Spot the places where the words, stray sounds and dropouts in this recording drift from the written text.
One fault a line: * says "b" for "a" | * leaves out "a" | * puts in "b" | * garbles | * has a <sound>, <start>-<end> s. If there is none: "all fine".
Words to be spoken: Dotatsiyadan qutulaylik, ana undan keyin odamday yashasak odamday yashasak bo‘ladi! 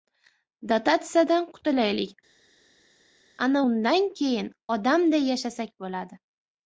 * leaves out "odamday yashasak"